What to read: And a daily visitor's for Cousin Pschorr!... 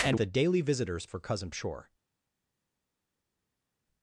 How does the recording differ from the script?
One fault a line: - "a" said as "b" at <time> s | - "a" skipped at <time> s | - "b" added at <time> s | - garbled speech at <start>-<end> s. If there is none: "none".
none